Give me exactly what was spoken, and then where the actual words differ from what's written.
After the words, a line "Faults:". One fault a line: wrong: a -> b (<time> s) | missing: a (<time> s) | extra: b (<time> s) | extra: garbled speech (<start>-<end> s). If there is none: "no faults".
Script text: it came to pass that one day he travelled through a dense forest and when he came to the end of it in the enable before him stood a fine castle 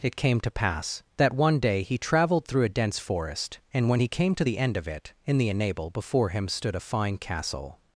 it came to pass that one day he travelled through a dense forest and when he came to the end of it in the enable before him stood a fine castle
Faults:
no faults